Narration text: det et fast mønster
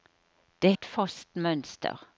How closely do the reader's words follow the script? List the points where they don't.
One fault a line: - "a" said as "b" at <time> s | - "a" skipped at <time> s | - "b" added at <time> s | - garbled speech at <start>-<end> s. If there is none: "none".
none